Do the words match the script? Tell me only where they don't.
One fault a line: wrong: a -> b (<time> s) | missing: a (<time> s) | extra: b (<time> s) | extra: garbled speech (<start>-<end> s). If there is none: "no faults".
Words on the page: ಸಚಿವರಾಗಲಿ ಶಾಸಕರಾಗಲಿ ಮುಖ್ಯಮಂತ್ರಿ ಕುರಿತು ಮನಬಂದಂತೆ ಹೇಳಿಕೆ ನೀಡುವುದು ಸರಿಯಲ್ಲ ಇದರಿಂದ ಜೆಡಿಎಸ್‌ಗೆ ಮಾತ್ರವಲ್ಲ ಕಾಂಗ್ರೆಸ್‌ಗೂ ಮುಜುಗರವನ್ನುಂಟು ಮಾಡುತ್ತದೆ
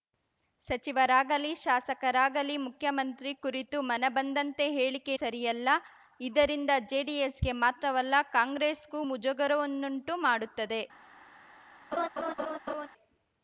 missing: ನೀಡುವುದು (5.2 s)